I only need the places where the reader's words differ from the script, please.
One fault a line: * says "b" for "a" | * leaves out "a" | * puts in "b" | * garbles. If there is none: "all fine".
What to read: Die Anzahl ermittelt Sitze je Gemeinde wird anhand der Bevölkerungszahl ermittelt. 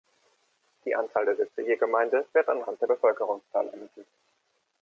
* says "der" for "ermittelt"